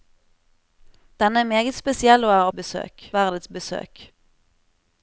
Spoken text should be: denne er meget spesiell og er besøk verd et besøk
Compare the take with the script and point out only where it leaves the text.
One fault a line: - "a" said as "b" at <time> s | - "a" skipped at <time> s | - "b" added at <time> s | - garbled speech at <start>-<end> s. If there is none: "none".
none